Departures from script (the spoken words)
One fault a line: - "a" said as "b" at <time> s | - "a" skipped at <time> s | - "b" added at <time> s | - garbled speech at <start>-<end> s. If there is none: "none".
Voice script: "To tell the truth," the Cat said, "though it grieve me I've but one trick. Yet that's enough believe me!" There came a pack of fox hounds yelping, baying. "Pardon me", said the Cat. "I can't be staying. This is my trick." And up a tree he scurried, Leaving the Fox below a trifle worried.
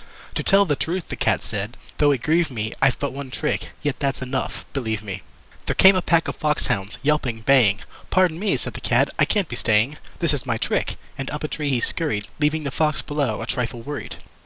none